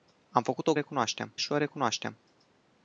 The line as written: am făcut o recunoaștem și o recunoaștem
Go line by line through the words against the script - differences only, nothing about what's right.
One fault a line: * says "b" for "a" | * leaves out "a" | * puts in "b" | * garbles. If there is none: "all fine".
all fine